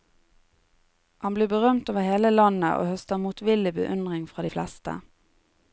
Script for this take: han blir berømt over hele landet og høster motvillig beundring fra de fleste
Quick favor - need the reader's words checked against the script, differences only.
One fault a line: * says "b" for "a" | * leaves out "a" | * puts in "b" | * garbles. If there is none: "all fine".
all fine